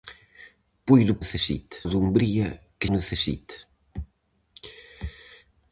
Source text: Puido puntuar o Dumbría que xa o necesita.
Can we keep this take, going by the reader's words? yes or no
no